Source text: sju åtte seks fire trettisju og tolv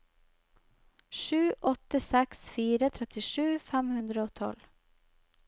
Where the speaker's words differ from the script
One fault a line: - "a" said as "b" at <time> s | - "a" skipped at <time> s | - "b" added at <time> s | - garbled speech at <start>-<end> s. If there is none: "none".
- "fem hundre" added at 3.7 s